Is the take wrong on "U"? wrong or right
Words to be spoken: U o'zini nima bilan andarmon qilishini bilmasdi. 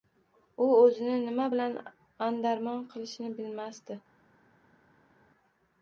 right